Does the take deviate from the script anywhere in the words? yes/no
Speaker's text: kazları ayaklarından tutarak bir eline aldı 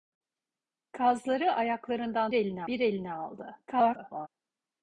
yes